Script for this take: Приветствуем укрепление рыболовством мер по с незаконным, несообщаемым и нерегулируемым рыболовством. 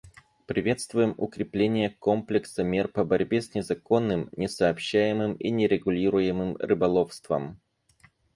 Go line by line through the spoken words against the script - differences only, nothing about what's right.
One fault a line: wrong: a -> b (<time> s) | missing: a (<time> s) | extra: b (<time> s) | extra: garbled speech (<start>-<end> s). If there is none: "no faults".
wrong: рыболовством -> комплекса (1.9 s)
extra: борьбе (3.0 s)